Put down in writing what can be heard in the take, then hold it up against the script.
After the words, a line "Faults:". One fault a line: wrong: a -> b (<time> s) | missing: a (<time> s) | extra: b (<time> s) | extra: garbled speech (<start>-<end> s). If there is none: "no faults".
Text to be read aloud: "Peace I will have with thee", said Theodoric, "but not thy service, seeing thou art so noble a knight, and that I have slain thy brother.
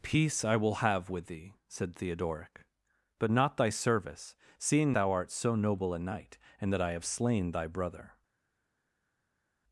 "Peace I will have with thee", said Theodoric, "but not thy service, seeing thou art so noble a knight, and that I have slain thy brother.
Faults:
no faults